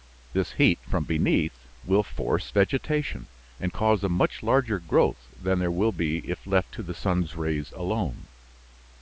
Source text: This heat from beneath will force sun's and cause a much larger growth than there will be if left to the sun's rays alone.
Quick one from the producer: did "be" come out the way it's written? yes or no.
yes